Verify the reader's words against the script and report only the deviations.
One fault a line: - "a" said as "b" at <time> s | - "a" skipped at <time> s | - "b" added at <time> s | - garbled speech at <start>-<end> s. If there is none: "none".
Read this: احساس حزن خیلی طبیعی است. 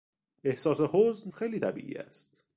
none